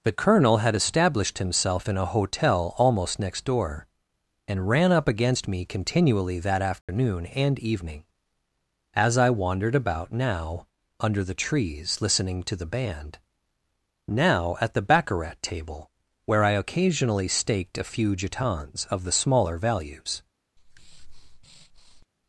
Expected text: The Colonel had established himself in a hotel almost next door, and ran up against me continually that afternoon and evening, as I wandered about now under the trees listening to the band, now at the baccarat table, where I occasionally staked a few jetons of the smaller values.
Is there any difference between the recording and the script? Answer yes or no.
no